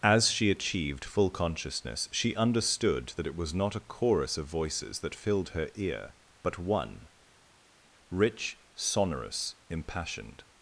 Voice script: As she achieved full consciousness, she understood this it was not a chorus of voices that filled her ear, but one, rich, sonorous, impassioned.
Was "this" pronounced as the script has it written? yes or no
no